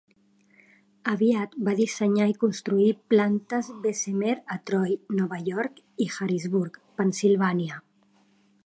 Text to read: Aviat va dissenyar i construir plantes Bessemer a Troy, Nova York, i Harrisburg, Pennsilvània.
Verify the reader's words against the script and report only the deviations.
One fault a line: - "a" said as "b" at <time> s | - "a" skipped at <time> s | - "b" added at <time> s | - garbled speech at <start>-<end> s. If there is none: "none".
none